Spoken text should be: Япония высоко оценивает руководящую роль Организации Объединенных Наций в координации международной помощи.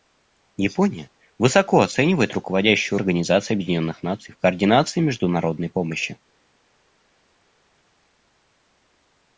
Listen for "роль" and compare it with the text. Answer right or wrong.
wrong